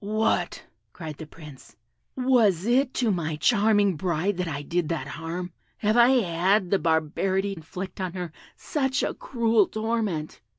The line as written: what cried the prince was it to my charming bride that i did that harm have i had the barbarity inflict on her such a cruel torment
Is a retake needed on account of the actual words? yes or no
no